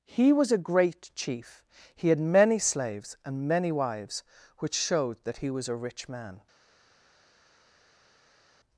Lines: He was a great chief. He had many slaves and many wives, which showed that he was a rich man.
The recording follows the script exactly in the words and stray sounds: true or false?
true